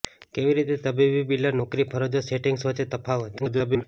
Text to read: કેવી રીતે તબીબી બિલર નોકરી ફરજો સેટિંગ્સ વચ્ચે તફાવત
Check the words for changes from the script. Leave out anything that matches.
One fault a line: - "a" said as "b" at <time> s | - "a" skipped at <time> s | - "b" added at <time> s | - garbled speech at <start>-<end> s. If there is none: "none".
- garbled speech at 3.4-3.8 s